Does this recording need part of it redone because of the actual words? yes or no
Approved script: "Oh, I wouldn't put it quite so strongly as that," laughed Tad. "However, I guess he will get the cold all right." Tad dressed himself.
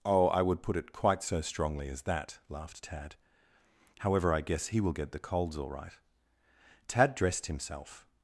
yes